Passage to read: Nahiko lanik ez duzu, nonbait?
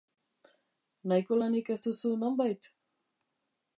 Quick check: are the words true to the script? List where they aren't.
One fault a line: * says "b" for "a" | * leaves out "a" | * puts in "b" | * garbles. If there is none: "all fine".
all fine